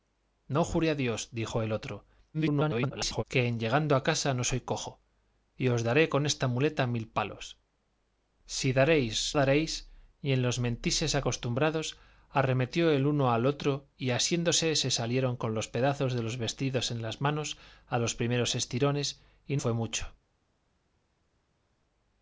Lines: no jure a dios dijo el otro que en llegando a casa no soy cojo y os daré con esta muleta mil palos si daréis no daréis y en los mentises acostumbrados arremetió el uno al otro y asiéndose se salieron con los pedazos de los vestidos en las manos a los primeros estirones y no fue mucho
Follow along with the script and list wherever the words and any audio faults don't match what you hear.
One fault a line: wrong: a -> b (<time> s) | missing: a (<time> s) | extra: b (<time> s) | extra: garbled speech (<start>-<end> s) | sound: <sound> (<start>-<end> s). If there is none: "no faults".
extra: garbled speech (2.3-3.2 s)
missing: no (9.4 s)
missing: no (19.6 s)